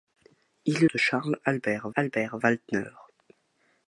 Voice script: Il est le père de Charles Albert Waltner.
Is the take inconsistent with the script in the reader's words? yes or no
yes